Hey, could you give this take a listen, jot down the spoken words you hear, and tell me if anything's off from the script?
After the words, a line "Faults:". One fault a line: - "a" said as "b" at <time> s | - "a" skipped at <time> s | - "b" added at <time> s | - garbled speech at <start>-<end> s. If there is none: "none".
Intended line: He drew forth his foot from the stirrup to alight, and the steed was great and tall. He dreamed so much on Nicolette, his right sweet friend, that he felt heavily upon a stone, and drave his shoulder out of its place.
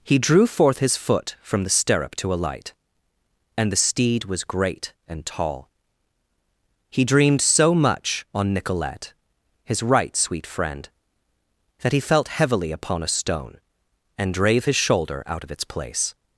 He drew forth his foot from the stirrup to alight, and the steed was great and tall. He dreamed so much on Nicolette, his right sweet friend, that he felt heavily upon a stone, and drave his shoulder out of its place.
Faults:
none